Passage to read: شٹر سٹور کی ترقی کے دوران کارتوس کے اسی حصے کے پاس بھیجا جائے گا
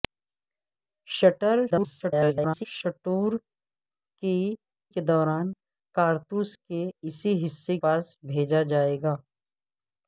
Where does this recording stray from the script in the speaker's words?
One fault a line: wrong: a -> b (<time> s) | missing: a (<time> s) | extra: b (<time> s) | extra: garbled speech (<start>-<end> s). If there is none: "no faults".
extra: garbled speech (1.7-2.7 s)
missing: ترقی (4.4 s)
missing: کے (7.8 s)